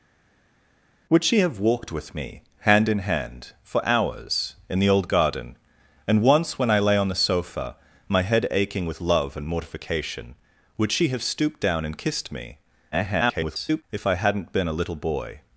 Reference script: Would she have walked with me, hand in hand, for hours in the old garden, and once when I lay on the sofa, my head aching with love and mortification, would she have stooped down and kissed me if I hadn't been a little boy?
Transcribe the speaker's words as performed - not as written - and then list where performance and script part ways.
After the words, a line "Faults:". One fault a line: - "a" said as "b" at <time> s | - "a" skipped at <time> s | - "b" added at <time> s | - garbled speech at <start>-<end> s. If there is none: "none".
Would she have walked with me, hand in hand, for hours in the old garden, and once when I lay on the sofa, my head aching with love and mortification, would she have stooped down and kissed me [garbled] if I hadn't been a little boy?
Faults:
- garbled speech at 12.9-13.8 s